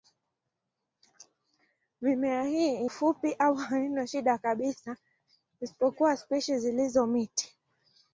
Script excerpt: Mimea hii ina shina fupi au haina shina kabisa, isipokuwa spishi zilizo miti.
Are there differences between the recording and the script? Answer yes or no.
yes